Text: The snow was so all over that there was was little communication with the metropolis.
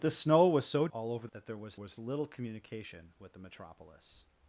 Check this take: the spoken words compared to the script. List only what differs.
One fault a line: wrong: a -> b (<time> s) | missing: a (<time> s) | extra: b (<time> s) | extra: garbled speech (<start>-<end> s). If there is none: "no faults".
no faults